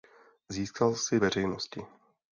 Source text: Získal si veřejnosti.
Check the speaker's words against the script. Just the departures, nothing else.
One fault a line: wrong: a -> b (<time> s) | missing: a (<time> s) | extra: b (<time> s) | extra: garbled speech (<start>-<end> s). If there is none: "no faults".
no faults